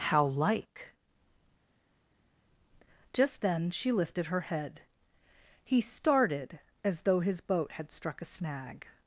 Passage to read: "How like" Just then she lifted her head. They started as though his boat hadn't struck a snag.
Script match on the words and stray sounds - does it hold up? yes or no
no